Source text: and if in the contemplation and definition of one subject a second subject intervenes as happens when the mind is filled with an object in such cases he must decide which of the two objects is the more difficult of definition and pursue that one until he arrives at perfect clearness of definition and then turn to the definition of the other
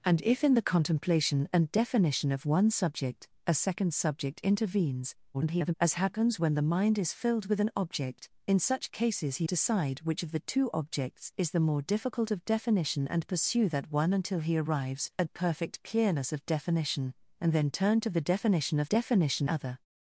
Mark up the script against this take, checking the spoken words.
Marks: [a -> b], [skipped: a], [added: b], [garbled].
and if in the contemplation and definition of one subject a second subject intervenes [garbled] as happens when the mind is filled with an object in such cases he [skipped: must] decide which of the two objects is the more difficult of definition and pursue that one until he arrives at perfect clearness of definition and then turn to the definition of [the -> definition] other